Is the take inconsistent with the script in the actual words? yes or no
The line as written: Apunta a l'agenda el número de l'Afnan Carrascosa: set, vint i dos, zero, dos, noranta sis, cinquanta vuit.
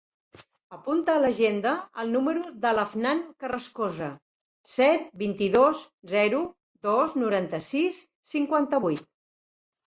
no